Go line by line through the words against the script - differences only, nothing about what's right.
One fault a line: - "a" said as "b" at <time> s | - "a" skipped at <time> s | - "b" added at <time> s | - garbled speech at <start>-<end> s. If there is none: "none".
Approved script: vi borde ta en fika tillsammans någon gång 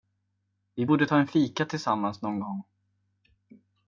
none